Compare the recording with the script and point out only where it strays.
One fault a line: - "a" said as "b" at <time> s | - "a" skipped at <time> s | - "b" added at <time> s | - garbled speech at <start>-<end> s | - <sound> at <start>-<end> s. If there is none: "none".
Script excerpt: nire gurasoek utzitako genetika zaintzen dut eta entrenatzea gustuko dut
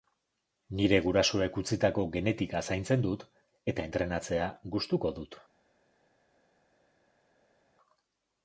none